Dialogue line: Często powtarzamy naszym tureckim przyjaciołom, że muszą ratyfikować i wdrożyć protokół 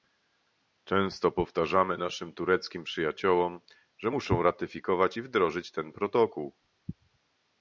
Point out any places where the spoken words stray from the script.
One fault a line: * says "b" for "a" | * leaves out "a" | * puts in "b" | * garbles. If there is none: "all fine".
* puts in "ten"